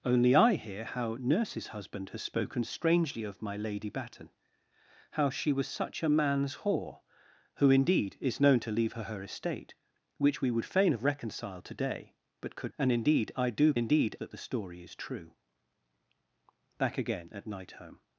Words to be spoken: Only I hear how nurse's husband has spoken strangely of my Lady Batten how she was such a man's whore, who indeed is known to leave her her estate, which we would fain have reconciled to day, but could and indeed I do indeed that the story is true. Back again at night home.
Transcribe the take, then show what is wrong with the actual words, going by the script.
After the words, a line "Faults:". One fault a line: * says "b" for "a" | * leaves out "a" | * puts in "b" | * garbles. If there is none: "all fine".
Only I hear how nurse's husband has spoken strangely of my Lady Batten how she was such a man's whore, who indeed is known to leave her her estate, which we would fain have reconciled to day, but could and indeed I do indeed that the story is true. Back again at night home.
Faults:
all fine